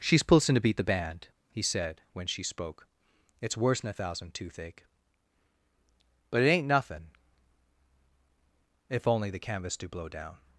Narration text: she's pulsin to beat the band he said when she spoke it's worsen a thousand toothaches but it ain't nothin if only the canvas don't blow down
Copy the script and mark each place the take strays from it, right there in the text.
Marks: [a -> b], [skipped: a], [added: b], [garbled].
she's pulsin to beat the band he said when she spoke it's worsen a thousand [toothaches -> toothache] but it ain't nothin if only the canvas [don't -> do] blow down